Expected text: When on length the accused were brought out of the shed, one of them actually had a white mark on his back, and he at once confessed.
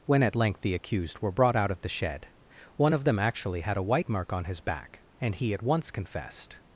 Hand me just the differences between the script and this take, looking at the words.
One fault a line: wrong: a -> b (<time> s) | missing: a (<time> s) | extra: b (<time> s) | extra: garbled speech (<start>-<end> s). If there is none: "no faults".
wrong: on -> at (0.2 s)